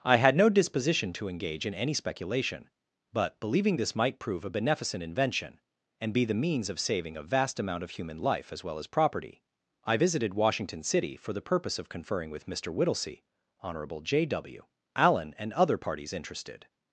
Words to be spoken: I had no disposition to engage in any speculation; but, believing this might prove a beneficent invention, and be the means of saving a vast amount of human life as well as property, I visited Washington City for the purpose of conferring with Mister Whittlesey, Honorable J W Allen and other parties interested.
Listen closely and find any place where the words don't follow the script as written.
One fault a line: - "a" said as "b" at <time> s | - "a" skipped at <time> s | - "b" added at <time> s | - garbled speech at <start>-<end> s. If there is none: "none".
none